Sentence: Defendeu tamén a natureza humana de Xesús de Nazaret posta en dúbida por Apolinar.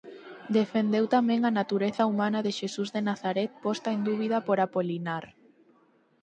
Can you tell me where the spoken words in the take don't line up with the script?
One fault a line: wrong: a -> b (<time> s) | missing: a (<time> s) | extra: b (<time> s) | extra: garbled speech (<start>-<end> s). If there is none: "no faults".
no faults